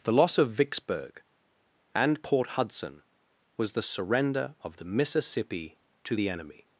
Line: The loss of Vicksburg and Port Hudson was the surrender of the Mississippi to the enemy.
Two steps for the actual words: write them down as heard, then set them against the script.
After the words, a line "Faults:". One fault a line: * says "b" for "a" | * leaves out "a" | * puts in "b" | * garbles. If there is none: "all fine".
The loss of Vicksburg and Port Hudson was the surrender of the Mississippi to the enemy.
Faults:
all fine